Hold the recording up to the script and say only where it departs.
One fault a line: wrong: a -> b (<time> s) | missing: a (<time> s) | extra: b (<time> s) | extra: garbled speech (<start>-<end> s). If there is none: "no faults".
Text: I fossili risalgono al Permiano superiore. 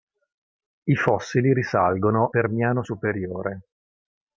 missing: al (2.3 s)